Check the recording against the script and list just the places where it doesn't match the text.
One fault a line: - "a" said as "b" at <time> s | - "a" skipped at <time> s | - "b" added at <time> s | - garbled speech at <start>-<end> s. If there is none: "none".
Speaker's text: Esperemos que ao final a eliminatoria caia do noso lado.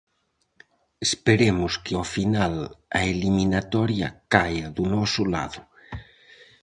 none